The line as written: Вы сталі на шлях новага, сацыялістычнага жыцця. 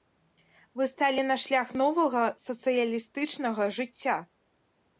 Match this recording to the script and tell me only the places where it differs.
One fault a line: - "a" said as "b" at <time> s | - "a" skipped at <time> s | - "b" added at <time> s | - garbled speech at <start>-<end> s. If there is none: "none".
none